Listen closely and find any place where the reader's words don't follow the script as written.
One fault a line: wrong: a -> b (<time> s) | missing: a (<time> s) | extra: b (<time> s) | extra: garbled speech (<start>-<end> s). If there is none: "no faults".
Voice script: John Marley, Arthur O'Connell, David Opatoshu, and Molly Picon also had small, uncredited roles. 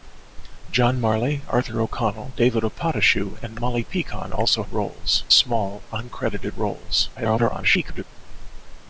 wrong: had -> roles (4.7 s)
extra: garbled speech (7.2-8.0 s)